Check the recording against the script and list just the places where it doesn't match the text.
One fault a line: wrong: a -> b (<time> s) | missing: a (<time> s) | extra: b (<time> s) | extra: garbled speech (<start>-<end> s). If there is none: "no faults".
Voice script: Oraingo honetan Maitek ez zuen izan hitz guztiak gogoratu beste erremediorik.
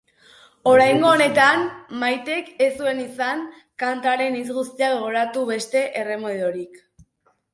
extra: kantaren (3.8 s)